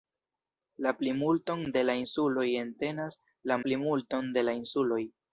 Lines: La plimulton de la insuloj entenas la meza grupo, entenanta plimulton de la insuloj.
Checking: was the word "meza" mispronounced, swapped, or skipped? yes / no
yes